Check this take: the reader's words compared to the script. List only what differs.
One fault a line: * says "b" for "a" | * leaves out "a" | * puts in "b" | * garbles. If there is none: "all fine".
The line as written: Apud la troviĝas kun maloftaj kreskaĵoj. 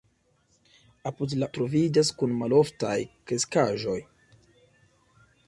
all fine